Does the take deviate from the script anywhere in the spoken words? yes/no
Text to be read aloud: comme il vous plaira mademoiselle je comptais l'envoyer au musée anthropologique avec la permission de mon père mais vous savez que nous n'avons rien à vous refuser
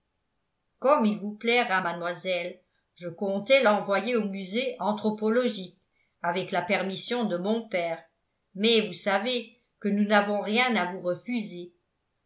no